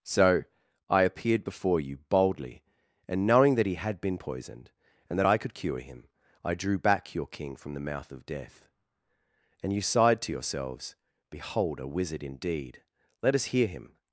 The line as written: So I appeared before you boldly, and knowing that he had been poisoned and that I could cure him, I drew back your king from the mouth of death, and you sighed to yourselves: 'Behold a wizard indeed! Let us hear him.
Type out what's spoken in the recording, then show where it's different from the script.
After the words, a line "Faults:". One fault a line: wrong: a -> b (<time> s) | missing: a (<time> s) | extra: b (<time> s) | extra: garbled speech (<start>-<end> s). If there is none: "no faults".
So I appeared before you boldly, and knowing that he had been poisoned and that I could cure him, I drew back your king from the mouth of death, and you sighed to yourselves: 'Behold a wizard indeed! Let us hear him.
Faults:
no faults